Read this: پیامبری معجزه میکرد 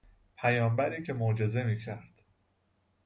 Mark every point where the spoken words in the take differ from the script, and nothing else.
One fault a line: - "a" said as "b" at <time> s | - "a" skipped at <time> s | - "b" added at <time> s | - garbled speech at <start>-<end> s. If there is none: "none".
- "که" added at 1.0 s